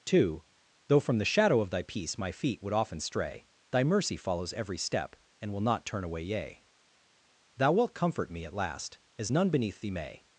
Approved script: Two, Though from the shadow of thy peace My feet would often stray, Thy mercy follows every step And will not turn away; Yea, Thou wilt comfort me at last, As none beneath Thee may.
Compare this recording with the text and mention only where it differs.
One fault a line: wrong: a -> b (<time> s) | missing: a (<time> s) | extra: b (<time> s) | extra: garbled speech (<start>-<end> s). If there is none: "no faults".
no faults